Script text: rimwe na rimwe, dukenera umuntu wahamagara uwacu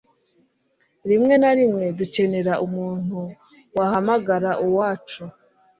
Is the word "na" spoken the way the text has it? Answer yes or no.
yes